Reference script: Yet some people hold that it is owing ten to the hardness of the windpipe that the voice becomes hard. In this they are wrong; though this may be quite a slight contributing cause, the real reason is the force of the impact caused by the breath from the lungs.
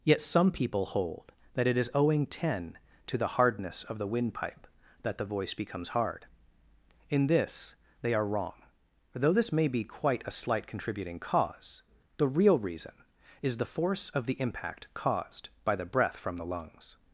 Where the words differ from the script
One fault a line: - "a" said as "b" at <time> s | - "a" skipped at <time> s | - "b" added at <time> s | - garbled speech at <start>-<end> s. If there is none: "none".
none